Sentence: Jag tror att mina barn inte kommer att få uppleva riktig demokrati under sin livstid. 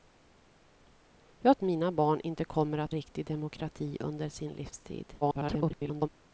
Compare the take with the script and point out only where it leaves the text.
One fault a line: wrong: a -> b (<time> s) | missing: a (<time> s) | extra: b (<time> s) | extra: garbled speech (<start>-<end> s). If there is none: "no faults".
missing: tror att (1.6 s)
missing: få uppleva (2.9 s)
extra: garbled speech (5.2-6.1 s)